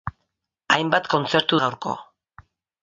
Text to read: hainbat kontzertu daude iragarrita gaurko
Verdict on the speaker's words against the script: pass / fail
fail